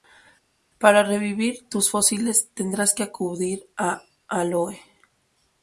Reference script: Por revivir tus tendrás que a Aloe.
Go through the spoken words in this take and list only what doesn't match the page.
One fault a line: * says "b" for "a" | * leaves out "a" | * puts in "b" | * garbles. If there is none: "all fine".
* says "Para" for "Por"
* puts in "fósiles"
* puts in "acudir"